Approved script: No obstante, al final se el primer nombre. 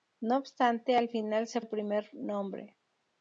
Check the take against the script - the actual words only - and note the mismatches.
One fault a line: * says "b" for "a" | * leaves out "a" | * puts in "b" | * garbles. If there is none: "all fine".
all fine